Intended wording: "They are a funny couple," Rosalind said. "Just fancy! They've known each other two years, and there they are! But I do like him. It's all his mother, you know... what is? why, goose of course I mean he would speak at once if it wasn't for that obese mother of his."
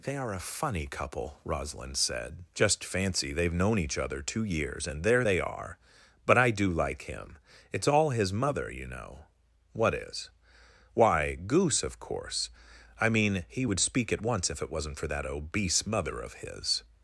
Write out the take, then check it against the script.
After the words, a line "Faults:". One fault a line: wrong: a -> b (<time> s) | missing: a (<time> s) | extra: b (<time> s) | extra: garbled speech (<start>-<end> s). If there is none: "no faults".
"They are a funny couple," Rosalind said. "Just fancy! They've known each other two years, and there they are! But I do like him. It's all his mother, you know... what is? why, goose of course I mean he would speak at once if it wasn't for that obese mother of his."
Faults:
no faults